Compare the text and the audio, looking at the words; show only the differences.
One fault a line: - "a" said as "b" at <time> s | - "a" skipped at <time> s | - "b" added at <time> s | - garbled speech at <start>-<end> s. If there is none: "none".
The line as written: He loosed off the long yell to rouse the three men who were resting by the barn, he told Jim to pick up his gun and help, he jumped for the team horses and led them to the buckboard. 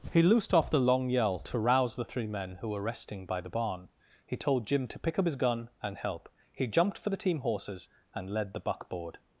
- "them to" skipped at 8.5 s